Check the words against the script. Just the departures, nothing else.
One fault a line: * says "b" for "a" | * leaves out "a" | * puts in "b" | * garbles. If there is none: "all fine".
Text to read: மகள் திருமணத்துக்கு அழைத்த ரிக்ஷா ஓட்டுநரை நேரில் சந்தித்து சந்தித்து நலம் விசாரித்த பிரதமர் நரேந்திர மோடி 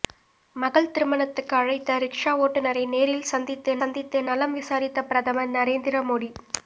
all fine